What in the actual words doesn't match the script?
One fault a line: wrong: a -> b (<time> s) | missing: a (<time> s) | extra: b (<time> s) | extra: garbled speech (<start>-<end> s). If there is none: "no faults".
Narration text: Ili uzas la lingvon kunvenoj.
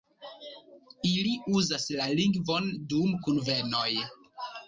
extra: dum (3.0 s)